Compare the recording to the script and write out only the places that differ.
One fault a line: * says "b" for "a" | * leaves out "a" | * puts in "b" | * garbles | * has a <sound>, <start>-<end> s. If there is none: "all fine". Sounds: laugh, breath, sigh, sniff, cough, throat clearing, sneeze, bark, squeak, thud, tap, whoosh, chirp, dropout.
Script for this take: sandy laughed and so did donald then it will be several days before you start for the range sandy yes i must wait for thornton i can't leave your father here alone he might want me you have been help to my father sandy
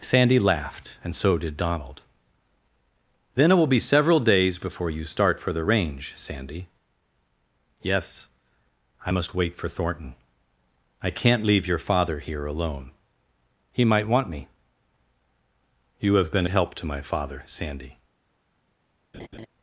* has a laugh, 19.1-19.5 s